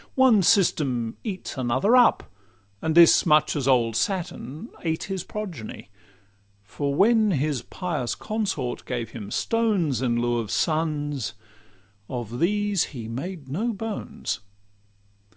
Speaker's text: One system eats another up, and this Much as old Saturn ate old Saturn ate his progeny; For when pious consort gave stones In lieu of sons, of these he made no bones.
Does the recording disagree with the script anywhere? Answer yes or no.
yes